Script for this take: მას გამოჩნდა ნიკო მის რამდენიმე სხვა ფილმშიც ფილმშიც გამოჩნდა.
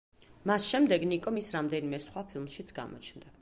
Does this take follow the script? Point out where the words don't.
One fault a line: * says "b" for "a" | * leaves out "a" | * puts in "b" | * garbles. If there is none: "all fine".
* says "შემდეგ" for "გამოჩნდა"
* leaves out "ფილმშიც"